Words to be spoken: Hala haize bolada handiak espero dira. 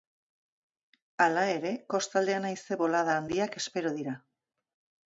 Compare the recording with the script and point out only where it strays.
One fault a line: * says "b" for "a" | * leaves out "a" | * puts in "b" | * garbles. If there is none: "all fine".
* puts in "ere kostaldean"